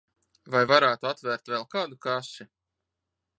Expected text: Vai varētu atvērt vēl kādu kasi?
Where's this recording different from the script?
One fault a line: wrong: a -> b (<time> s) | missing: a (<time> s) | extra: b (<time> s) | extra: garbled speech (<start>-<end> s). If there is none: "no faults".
no faults